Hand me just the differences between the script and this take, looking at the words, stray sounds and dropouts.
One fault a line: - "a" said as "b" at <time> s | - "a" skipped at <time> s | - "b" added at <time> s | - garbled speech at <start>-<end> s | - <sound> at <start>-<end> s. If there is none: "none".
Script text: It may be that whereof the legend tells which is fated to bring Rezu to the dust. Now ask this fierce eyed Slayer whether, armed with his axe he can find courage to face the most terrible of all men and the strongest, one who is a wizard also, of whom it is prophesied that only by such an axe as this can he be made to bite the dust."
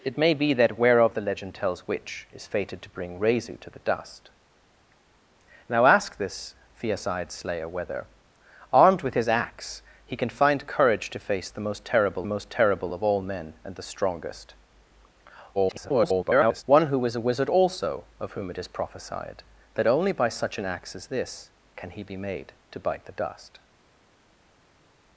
- "most terrible" added at 12.3 s
- garbled speech at 15.5-16.6 s